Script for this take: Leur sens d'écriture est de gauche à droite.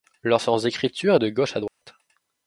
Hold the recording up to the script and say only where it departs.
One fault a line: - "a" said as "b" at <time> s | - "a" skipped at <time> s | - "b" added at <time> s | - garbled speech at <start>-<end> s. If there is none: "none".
none